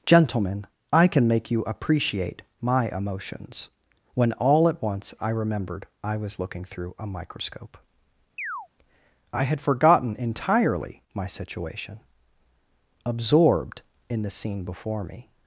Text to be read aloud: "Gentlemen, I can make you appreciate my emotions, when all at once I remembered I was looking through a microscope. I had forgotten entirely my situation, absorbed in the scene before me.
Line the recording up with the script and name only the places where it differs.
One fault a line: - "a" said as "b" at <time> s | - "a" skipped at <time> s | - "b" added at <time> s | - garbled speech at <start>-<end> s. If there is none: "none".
none